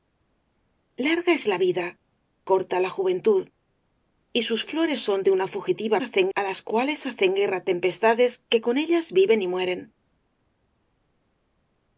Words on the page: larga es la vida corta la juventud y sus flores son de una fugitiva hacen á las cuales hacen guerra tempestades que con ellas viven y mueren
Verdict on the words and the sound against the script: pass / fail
pass